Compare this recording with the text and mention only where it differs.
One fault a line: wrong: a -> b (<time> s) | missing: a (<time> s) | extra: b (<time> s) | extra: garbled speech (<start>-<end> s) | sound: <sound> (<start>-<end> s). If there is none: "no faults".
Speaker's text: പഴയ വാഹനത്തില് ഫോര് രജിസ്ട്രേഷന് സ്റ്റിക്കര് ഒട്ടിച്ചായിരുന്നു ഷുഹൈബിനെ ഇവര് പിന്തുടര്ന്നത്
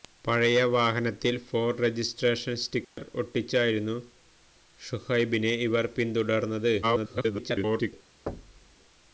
sound: dropout (2.8-3.0 s)
extra: garbled speech (6.8-7.9 s)
sound: thud (8.3-8.8 s)